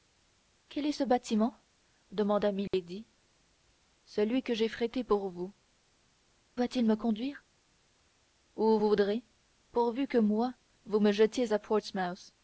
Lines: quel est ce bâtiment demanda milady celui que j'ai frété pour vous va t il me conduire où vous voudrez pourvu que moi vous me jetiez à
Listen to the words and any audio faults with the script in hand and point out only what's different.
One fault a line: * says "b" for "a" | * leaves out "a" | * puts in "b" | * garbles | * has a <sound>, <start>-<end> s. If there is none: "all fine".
* has a dropout, 2.7-2.7 s